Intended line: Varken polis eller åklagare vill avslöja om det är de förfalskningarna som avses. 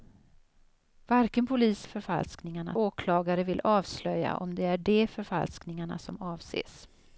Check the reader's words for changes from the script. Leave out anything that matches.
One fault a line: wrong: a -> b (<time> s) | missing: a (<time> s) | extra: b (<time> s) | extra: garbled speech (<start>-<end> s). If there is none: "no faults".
wrong: eller -> förfalskningarna (1.8 s)